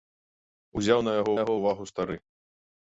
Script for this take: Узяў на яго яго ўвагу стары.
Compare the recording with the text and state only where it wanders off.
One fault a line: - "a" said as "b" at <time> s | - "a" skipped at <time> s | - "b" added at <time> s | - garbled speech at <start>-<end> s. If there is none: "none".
none